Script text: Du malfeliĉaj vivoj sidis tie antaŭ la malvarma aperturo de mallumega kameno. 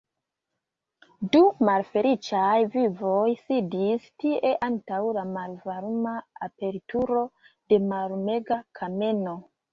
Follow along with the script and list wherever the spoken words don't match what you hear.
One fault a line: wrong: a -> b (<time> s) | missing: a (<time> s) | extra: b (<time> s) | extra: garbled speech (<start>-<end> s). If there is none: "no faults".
no faults